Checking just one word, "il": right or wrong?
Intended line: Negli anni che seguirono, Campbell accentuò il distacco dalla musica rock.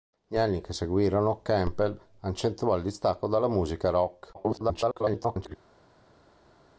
right